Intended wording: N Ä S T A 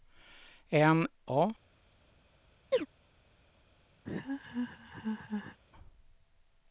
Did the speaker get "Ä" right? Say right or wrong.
wrong